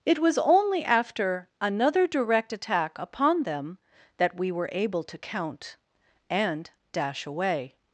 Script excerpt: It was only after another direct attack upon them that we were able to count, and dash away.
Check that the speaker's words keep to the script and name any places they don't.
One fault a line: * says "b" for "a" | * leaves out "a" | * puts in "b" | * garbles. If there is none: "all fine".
all fine